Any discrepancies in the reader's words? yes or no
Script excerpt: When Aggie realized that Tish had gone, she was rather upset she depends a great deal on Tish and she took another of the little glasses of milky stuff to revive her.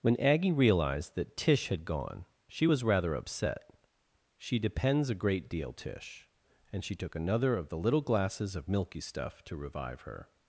yes